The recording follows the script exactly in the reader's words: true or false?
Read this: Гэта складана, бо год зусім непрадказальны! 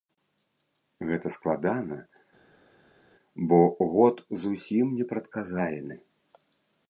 true